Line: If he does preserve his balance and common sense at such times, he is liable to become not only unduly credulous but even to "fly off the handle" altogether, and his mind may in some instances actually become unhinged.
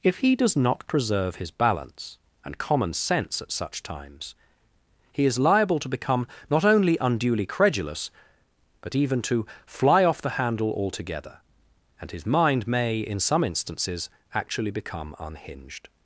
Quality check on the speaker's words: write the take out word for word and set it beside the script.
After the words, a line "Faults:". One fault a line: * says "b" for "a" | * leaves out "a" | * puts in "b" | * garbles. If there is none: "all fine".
If he does not preserve his balance and common sense at such times, he is liable to become not only unduly credulous but even to "fly off the handle" altogether, and his mind may in some instances actually become unhinged.
Faults:
* puts in "not"